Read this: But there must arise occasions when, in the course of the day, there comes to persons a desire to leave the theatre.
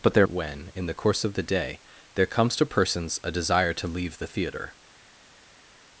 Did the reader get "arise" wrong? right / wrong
wrong